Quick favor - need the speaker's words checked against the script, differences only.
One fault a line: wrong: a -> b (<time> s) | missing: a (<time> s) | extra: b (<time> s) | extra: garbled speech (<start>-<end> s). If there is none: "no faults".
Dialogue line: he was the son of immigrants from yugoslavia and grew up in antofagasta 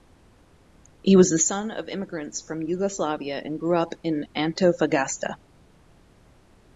no faults